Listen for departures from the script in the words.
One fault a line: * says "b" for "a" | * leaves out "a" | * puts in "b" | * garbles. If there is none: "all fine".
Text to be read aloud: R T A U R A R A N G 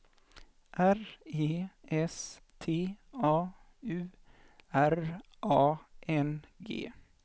* puts in "E S"
* leaves out "R A"